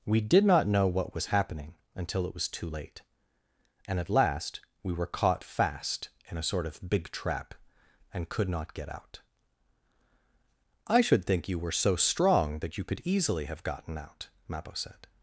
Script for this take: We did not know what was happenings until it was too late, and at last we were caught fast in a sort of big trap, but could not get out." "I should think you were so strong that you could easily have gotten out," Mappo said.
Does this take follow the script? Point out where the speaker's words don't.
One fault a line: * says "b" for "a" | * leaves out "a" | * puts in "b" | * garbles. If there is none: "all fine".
* says "happening" for "happenings"
* says "and" for "but"